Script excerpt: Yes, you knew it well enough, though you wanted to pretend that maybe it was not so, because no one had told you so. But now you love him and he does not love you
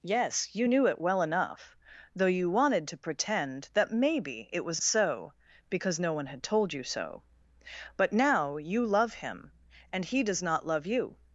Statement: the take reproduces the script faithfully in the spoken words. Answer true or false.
false